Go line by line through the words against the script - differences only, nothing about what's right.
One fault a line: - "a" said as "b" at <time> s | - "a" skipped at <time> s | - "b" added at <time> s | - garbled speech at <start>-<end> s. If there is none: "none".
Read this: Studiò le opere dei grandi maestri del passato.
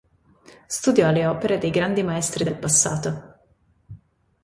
none